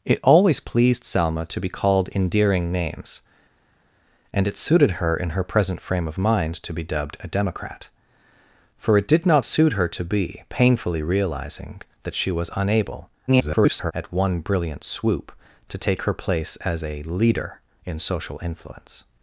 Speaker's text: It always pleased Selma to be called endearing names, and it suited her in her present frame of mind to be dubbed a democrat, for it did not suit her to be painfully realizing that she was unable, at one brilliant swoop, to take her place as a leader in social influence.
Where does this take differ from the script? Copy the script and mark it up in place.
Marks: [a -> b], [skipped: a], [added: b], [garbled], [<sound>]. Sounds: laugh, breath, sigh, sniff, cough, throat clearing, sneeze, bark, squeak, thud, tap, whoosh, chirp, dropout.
It always pleased Selma to be called endearing names, and it suited her in her present frame of mind to be dubbed a democrat, for it did not suit her to be painfully realizing that she was unable, [garbled] at one brilliant swoop, to take her place as a leader in social influence.